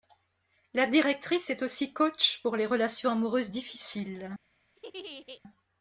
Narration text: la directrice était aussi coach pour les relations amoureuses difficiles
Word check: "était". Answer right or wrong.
wrong